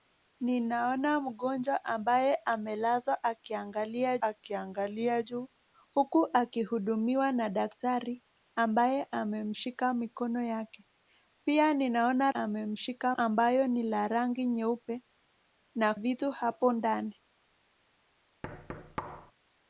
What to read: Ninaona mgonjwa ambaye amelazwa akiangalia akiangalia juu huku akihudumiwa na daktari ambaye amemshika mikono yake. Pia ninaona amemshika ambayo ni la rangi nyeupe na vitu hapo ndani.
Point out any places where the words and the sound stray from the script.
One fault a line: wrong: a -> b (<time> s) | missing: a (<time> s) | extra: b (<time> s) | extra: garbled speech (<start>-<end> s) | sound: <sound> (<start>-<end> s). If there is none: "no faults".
sound: thud (18.4-19.3 s)